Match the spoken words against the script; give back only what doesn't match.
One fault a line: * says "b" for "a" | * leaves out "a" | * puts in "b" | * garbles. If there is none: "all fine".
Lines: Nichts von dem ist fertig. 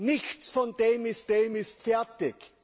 * puts in "dem ist"